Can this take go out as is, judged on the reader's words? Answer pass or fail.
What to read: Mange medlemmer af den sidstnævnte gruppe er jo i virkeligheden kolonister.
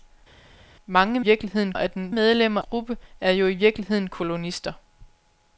fail